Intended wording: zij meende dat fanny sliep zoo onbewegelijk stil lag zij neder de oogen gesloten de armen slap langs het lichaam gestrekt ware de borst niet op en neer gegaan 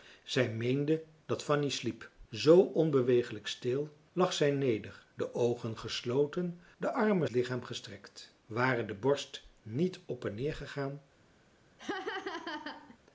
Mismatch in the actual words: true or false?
true